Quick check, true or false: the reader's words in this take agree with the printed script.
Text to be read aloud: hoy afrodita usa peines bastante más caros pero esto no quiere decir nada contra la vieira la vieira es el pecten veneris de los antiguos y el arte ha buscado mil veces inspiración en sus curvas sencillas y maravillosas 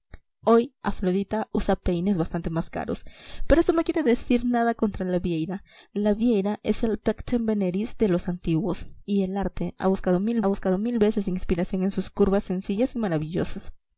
false